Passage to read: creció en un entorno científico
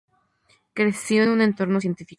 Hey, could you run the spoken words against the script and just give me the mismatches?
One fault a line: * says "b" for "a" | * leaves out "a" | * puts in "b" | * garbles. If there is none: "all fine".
all fine